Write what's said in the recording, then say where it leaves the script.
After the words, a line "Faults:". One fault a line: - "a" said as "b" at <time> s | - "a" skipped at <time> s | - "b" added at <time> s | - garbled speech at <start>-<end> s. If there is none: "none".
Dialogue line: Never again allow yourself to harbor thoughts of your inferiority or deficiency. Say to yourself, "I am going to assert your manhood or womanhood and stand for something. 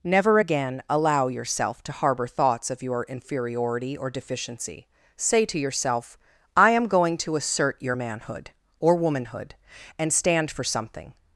Never again allow yourself to harbor thoughts of your inferiority or deficiency. Say to yourself, "I am going to assert your manhood or womanhood and stand for something.
Faults:
none